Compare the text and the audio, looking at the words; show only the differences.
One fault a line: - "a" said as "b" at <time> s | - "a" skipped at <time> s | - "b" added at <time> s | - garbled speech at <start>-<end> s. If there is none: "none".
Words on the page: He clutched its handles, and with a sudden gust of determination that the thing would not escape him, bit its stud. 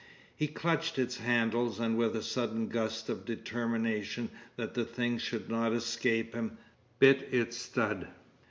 - "would" said as "should" at 5.2 s